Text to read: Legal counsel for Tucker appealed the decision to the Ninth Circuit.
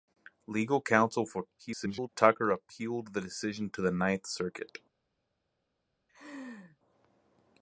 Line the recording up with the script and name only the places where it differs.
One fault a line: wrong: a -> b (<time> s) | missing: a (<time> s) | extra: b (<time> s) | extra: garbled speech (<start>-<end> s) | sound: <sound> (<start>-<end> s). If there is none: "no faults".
extra: garbled speech (1.6-2.1 s)
sound: laugh (6.1-6.8 s)